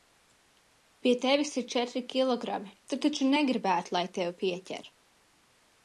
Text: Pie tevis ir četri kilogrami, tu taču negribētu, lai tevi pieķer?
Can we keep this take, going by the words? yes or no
yes